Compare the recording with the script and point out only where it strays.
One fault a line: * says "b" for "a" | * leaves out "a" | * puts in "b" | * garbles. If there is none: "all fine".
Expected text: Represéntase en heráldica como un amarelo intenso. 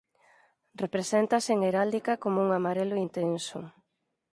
all fine